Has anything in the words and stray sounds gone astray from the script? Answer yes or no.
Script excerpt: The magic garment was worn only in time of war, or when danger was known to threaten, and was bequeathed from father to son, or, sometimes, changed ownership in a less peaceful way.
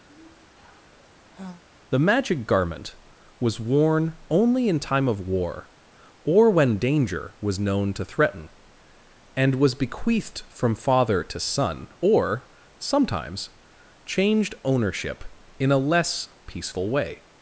yes